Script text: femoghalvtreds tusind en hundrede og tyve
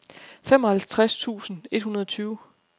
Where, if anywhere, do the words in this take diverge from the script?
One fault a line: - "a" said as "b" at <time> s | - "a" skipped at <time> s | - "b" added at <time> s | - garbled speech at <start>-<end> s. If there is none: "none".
- "en" said as "et" at 1.7 s